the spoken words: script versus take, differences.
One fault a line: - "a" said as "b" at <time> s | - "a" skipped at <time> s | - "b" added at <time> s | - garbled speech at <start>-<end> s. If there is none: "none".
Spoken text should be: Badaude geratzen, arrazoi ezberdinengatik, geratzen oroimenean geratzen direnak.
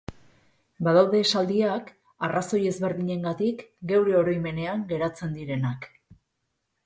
- "geratzen" said as "esaldiak" at 1.2 s
- "geratzen" said as "geure" at 3.9 s